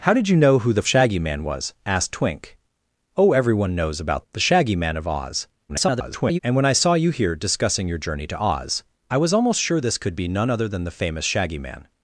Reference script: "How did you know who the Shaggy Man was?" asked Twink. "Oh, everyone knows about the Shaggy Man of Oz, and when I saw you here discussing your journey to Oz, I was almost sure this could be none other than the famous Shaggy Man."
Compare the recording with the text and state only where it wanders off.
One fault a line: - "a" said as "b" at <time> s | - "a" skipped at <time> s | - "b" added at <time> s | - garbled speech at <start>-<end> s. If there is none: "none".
- garbled speech at 5.7-6.4 s